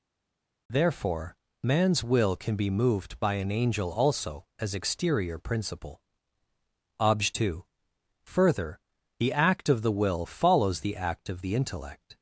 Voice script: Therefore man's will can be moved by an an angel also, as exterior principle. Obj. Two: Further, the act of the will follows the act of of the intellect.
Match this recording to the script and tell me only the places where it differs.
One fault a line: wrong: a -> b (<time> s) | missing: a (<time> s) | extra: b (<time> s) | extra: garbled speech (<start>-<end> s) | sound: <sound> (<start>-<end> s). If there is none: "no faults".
missing: an (3.5 s)
missing: of (11.4 s)